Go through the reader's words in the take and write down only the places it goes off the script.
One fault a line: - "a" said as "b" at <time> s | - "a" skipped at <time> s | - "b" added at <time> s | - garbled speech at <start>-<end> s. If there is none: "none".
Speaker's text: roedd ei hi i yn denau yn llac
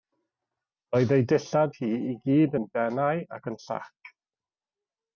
- "dillad" added at 1.3 s
- "gyd" added at 2.2 s
- "ac" added at 3.4 s